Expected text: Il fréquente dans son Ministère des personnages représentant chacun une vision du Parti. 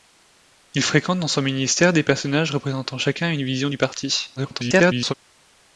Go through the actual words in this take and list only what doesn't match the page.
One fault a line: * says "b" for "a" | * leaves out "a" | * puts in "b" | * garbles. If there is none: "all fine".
* garbles